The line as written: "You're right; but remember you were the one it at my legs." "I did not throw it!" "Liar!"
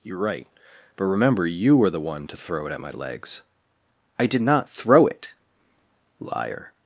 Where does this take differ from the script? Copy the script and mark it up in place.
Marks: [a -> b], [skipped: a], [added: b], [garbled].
"You're right; but remember you were the one [added: to throw] it at my legs." "I did not throw it!" "Liar!"